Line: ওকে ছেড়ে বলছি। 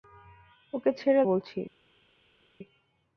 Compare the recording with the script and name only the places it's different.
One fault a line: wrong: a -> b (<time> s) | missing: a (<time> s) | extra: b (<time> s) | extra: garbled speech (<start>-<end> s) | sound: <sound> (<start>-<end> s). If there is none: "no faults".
no faults